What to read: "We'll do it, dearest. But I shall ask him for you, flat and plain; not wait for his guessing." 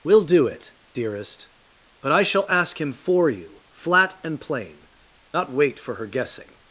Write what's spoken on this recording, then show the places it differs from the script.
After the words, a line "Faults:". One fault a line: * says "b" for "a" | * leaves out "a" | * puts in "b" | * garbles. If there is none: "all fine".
"We'll do it, dearest. But I shall ask him for you, flat and plain; not wait for her guessing."
Faults:
* says "her" for "his"